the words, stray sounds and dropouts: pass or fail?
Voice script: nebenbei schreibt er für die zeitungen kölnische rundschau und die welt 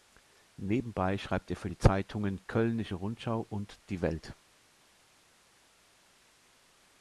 pass